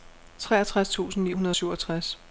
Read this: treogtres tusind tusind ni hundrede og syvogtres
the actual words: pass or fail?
fail